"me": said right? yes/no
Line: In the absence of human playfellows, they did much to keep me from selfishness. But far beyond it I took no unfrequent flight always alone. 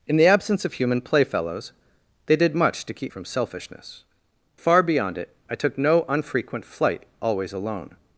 no